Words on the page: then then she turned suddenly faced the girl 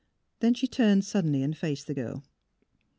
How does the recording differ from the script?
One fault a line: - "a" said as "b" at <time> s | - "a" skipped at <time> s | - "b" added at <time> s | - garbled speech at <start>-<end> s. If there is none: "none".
- "then" skipped at 0.6 s
- "and" added at 1.4 s